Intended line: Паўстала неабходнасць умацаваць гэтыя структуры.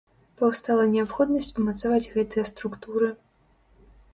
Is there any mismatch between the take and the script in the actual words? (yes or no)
no